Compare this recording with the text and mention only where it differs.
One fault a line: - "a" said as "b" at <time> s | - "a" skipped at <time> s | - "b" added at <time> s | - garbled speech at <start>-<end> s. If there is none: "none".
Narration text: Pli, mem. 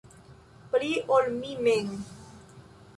- "ol mi" added at 1.2 s